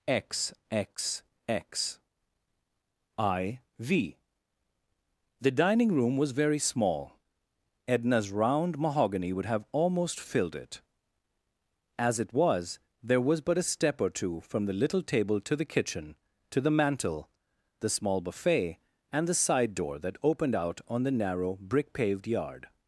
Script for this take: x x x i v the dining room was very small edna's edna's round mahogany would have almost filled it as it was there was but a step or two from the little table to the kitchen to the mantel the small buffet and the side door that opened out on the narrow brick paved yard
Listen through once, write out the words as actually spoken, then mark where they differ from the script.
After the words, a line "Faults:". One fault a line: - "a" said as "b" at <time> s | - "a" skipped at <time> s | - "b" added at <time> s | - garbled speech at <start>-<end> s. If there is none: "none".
x x x i v the dining room was very small edna's round mahogany would have almost filled it as it was there was but a step or two from the little table to the kitchen to the mantel the small buffet and the side door that opened out on the narrow brick paved yard
Faults:
- "edna's" skipped at 8.3 s